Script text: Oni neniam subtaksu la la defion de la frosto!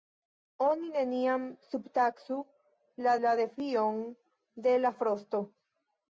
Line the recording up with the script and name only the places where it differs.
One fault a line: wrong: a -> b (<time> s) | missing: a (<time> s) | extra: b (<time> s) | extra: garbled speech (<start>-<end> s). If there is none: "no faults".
no faults